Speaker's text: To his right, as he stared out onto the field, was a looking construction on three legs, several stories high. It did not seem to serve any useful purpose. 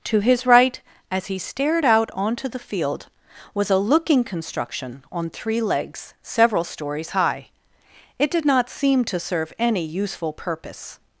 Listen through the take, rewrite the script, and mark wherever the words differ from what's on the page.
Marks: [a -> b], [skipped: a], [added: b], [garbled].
To his right, as he stared out onto the field, was a looking construction on three legs, several stories high. It did not seem to serve any useful purpose.